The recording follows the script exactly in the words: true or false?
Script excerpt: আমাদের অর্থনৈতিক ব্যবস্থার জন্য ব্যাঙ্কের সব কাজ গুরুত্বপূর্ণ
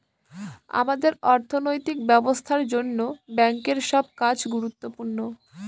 true